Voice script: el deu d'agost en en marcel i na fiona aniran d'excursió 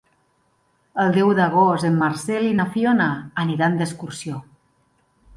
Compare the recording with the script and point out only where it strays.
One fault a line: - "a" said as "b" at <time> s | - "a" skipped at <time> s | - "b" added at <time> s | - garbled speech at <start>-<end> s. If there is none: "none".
- "en" skipped at 2.0 s